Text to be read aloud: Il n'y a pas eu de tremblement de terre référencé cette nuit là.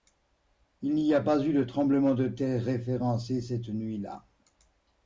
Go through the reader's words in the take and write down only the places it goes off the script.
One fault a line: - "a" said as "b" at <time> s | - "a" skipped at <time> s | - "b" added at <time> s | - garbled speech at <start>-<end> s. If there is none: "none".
none